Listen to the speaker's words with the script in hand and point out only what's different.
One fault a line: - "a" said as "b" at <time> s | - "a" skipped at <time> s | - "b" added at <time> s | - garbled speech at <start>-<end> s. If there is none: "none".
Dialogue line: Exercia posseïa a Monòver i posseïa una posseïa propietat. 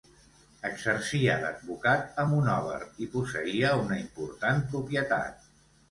- "posseïa" said as "d'advocat" at 1.4 s
- "posseïa" said as "important" at 4.0 s